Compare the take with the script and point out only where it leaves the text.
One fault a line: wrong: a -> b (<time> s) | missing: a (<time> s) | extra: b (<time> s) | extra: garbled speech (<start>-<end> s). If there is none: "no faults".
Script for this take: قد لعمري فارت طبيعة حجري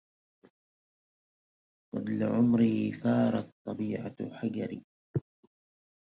no faults